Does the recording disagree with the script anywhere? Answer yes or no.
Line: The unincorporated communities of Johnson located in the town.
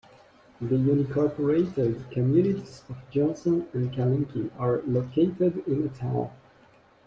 yes